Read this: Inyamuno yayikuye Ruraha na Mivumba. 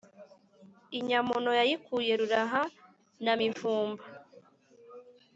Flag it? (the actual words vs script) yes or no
no